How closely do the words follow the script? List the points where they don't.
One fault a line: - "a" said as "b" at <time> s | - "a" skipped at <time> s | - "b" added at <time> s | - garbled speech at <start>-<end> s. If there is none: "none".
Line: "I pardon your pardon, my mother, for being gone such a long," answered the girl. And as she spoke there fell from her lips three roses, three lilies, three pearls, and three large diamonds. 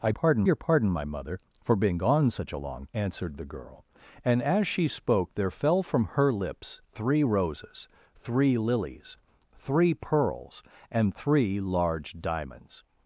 none